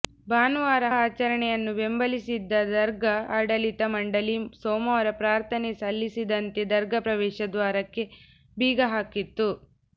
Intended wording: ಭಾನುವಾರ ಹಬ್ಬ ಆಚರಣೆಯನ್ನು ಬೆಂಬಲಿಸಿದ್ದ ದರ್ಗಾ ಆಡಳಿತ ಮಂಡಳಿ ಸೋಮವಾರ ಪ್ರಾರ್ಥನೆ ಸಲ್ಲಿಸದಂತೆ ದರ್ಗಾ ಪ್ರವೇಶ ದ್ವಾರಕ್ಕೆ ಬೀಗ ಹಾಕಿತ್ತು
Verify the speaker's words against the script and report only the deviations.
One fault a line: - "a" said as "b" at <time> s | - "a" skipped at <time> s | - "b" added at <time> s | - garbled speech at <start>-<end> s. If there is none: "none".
- "ಹಬ್ಬ" skipped at 0.9 s